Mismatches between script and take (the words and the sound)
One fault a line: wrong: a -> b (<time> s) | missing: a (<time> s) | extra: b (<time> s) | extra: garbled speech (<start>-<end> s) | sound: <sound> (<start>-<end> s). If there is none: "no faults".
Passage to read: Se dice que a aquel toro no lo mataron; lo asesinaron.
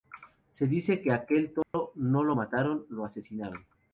sound: dropout (1.6-1.7 s)